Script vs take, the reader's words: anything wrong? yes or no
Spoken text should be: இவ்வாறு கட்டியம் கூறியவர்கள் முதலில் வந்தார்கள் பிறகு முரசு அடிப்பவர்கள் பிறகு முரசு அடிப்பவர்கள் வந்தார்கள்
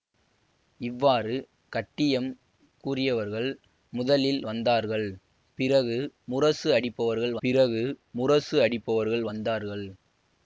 no